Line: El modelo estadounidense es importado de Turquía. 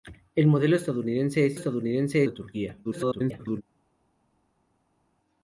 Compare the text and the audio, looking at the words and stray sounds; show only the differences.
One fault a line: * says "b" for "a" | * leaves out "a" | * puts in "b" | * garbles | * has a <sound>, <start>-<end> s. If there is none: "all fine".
* says "estadounidense" for "importado"
* garbles